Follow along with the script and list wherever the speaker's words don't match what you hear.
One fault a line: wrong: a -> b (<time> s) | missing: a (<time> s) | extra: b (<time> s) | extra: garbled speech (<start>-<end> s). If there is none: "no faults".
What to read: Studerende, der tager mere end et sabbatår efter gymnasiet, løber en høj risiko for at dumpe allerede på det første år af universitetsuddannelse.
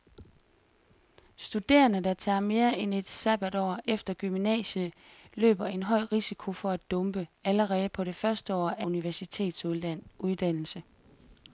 no faults